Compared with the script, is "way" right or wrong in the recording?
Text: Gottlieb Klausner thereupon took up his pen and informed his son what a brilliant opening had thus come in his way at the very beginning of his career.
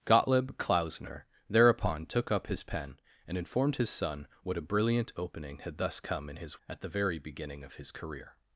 wrong